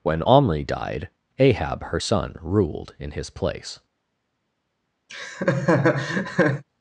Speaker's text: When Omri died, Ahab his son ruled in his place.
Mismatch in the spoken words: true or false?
true